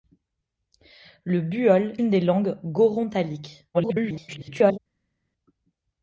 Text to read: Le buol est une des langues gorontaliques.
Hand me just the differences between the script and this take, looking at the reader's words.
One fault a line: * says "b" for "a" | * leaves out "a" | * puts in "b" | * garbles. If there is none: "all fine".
* leaves out "est"
* garbles